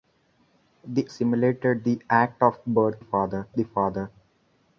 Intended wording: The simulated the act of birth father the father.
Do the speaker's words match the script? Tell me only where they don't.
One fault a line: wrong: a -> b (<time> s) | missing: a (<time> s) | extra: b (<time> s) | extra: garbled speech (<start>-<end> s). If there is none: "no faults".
no faults